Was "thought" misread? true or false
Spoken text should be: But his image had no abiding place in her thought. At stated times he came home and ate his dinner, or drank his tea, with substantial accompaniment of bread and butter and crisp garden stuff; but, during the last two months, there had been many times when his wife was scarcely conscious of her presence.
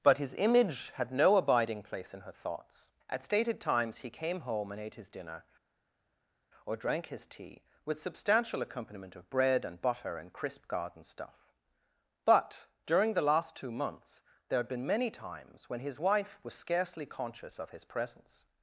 true